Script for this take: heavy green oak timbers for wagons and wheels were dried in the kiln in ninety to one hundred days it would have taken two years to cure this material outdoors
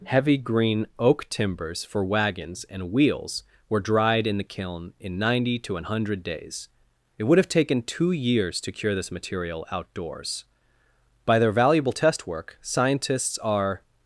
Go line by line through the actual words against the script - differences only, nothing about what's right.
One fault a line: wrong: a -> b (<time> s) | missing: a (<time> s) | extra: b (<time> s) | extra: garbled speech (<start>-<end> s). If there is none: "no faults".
extra: by their valuable test work scientists are (11.2 s)